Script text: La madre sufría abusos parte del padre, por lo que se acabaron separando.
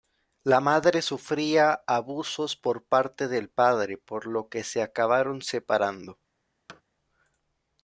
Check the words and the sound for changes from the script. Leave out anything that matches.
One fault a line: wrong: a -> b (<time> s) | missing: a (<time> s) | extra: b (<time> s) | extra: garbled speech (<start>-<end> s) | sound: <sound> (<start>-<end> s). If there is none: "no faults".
extra: por (2.5 s)
sound: thud (6.7-6.8 s)